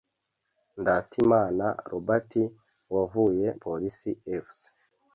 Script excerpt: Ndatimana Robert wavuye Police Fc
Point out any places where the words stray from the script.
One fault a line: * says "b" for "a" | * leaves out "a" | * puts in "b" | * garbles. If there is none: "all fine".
all fine